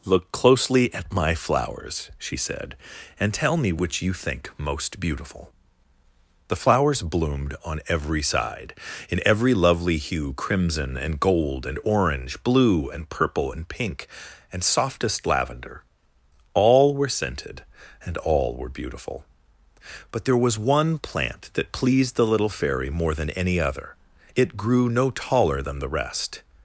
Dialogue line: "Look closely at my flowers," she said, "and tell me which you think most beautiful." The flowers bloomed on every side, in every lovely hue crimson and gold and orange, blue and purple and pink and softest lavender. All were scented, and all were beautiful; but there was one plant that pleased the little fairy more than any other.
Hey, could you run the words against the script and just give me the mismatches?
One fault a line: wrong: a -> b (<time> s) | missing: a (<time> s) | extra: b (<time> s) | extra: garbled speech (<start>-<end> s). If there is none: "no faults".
extra: It grew no taller than the rest (24.4 s)